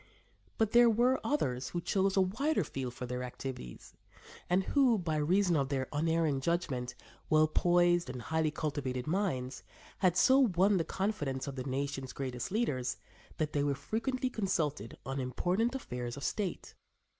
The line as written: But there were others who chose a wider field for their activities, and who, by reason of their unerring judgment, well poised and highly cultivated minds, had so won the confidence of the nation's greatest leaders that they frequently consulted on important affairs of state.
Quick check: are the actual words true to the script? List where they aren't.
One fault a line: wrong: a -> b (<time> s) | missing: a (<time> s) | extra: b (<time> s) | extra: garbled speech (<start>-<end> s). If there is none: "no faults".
extra: were (13.6 s)